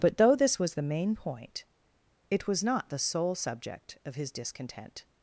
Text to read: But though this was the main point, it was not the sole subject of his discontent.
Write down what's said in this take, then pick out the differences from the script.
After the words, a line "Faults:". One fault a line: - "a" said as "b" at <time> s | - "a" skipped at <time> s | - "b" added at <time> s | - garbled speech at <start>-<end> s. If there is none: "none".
But though this was the main point, it was not the sole subject of his discontent.
Faults:
none